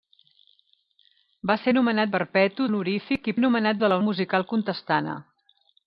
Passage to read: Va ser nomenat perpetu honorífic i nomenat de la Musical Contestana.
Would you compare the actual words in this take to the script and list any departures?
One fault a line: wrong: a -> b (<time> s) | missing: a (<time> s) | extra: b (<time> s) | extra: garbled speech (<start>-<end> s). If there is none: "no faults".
no faults